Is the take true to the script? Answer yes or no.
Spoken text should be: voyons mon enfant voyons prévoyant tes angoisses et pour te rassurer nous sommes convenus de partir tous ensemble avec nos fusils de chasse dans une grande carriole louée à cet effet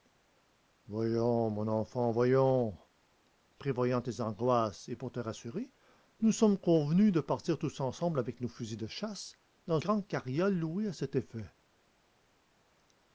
no